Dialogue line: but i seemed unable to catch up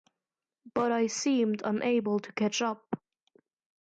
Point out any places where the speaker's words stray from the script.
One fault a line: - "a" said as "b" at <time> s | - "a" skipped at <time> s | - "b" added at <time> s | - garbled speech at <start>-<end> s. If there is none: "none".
none